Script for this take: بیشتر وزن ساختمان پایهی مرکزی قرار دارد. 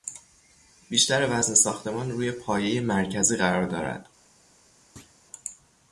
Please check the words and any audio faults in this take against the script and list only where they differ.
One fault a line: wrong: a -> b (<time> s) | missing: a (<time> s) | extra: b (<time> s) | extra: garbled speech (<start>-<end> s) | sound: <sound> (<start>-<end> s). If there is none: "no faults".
extra: روی (2.1 s)
sound: thud (5.0-5.2 s)